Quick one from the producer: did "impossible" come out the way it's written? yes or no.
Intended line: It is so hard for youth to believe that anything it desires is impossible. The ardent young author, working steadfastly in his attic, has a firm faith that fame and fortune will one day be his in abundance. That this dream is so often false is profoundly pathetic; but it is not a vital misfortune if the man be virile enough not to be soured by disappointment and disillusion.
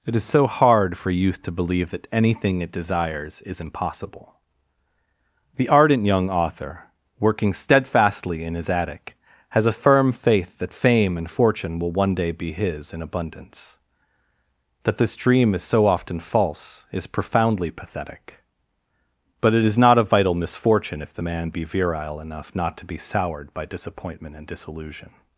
yes